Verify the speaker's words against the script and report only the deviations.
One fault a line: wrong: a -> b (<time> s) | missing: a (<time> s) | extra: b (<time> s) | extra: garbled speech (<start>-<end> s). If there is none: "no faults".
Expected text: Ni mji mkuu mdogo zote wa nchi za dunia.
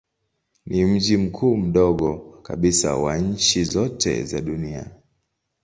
wrong: zote -> kabisa (2.4 s)
extra: zote (3.6 s)